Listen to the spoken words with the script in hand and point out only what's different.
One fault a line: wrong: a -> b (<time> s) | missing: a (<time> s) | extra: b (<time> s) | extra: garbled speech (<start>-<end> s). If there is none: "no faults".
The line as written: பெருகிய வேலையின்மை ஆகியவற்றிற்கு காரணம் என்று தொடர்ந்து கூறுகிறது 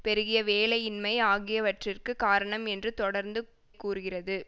no faults